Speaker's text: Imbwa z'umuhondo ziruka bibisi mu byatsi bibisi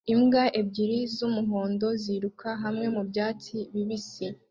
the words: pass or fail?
fail